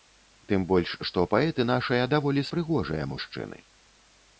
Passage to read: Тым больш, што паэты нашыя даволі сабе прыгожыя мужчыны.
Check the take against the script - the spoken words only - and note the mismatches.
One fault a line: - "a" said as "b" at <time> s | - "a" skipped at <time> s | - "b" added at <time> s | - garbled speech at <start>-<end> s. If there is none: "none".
- "сабе" skipped at 2.5 s